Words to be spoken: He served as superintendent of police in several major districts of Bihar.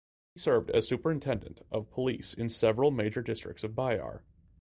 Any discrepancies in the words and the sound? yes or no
no